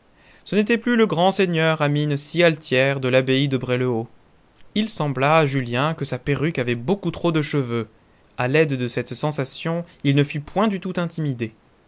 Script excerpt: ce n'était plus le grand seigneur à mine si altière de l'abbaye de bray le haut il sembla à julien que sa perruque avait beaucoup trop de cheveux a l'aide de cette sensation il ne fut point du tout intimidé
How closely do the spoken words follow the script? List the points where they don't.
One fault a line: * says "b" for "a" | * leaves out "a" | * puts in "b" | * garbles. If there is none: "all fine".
all fine